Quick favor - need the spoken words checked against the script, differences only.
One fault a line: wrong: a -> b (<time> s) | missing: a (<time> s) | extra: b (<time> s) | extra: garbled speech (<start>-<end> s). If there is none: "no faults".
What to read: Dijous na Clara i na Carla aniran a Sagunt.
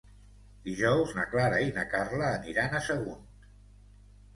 no faults